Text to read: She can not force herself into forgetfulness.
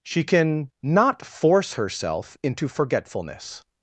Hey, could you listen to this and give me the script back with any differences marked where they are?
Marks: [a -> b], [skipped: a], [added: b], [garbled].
She can not force herself into forgetfulness.